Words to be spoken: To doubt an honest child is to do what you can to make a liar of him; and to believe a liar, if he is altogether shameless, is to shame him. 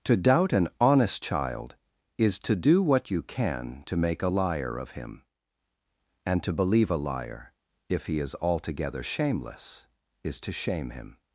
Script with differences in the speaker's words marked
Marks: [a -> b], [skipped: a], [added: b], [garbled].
To doubt an honest child is to do what you can to make a liar of him; and to believe a liar, if he is altogether shameless, is to shame him.